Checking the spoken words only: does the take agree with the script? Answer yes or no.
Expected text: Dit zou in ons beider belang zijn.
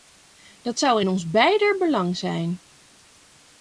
no